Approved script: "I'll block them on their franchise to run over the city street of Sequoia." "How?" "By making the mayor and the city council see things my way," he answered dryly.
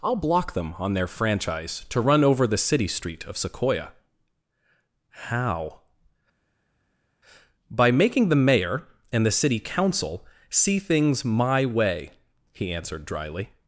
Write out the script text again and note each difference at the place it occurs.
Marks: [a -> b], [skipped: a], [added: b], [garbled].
"I'll block them on their franchise to run over the city street of Sequoia." "How?" "By making the mayor and the city council see things my way," he answered dryly.